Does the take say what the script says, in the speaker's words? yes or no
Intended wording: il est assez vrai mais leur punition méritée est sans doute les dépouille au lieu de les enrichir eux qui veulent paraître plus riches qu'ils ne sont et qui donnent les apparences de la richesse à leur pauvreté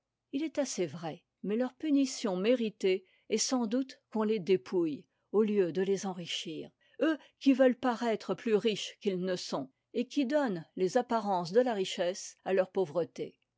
no